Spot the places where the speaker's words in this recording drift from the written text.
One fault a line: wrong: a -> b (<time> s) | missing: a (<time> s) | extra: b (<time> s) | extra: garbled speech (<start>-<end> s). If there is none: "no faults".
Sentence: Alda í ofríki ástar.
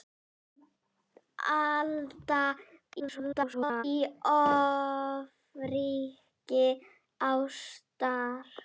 extra: garbled speech (3.0-3.8 s)